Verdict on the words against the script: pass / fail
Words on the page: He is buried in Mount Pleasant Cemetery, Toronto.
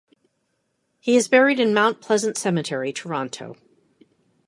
pass